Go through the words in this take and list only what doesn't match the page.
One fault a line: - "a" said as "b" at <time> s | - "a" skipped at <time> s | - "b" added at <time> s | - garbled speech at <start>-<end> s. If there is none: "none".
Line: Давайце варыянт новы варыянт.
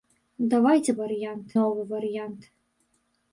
none